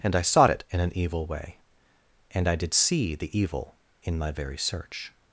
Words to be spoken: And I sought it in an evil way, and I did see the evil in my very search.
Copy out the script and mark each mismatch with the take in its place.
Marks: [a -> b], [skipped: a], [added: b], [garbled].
And I sought it in an evil way, and I did see the evil in my very search.